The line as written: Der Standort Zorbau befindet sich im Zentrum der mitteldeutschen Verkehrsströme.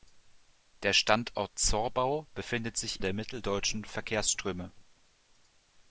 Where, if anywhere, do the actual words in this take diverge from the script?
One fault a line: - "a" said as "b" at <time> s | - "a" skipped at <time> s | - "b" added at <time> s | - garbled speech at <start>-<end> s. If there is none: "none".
- "im Zentrum" skipped at 3.0 s